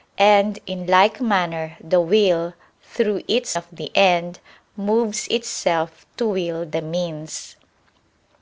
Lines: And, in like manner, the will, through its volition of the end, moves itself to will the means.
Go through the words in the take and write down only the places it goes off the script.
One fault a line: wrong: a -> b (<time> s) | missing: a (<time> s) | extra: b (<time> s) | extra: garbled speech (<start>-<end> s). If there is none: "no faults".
missing: volition (3.6 s)